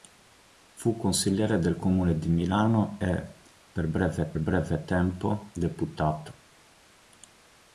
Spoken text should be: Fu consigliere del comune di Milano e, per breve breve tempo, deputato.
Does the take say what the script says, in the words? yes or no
yes